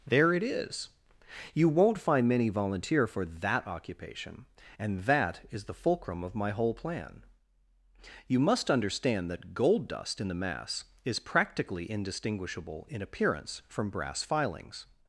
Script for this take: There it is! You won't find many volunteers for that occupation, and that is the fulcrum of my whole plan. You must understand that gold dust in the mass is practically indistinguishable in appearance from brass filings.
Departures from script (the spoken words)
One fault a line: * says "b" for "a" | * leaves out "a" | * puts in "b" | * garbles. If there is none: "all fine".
* says "volunteer" for "volunteers"